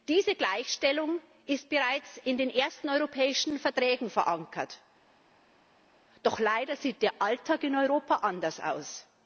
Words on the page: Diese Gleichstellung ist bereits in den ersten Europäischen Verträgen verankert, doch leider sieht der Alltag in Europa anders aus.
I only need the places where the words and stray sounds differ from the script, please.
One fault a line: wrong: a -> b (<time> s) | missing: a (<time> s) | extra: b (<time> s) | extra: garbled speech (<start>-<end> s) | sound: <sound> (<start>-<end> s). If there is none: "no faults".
no faults